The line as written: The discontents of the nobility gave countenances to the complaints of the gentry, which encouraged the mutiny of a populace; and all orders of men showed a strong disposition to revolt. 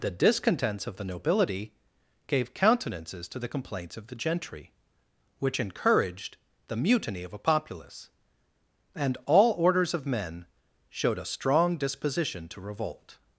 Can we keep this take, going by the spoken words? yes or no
yes